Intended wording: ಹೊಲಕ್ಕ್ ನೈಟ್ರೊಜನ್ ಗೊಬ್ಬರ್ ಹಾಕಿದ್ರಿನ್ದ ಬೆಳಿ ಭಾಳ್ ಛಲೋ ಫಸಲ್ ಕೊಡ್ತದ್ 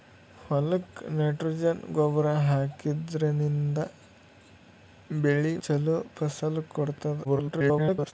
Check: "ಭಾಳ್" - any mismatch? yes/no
yes